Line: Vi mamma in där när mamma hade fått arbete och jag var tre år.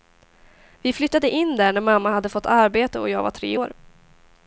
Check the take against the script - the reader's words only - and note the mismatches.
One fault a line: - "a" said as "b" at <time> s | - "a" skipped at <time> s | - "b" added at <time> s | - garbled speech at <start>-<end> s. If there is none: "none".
- "mamma" said as "flyttade" at 0.9 s